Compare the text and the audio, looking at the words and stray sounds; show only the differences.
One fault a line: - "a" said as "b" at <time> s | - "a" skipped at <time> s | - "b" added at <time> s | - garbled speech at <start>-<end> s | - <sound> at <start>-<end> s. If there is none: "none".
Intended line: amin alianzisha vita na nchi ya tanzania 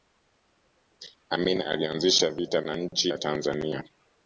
none